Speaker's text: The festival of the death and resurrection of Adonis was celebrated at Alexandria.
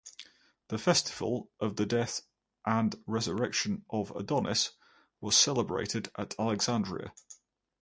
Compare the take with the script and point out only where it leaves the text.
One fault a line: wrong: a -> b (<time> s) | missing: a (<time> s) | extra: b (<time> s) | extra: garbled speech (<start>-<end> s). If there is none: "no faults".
no faults